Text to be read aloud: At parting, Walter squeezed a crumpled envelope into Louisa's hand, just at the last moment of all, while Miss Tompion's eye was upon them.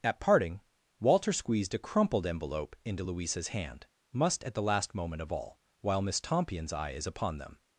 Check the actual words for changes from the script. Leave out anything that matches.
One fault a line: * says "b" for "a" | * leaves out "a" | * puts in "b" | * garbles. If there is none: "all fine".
* says "must" for "just"
* says "is" for "was"